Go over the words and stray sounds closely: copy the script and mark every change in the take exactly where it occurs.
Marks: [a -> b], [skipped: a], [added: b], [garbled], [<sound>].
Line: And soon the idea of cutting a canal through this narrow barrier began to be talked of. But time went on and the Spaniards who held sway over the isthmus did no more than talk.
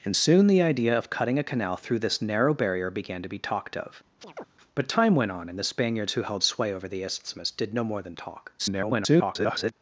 And soon the idea of cutting a canal through this narrow barrier began to be talked of. [chirp] But time went on and the Spaniards who held sway over the isthmus did no more than talk. [garbled]